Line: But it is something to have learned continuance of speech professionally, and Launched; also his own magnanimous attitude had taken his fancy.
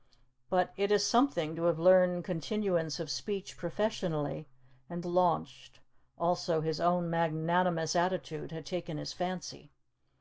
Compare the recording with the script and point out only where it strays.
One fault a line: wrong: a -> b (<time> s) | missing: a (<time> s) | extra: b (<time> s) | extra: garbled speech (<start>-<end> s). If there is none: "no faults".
no faults